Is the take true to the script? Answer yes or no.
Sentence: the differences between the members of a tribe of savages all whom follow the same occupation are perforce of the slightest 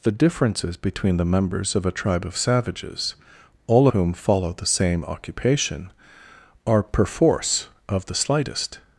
yes